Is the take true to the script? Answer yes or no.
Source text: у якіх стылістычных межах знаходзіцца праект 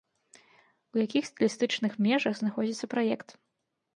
yes